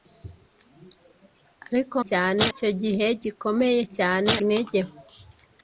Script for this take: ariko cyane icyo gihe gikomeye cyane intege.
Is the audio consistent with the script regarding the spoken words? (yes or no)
yes